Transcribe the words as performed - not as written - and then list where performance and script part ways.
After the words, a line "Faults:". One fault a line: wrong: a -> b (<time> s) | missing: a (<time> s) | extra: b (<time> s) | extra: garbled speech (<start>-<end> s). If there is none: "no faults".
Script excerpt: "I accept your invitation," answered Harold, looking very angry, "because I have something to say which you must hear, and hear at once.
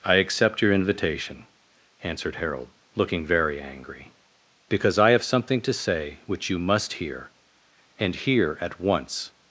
"I accept your invitation," answered Harold, looking very angry, "because I have something to say which you must hear, and hear at once.
Faults:
no faults